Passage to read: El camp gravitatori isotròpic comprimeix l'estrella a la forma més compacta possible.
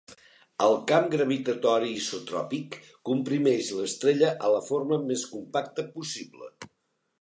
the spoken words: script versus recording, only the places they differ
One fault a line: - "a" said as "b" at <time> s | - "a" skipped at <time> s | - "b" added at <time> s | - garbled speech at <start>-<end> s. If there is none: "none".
none